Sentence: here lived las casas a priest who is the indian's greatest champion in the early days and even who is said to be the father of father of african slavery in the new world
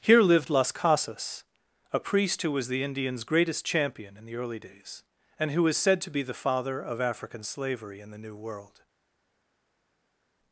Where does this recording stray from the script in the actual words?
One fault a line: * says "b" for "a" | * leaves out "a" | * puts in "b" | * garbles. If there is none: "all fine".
* says "was" for "is"
* leaves out "even"
* leaves out "father of"